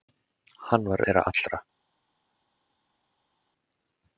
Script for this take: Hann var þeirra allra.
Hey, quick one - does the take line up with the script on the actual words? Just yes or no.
yes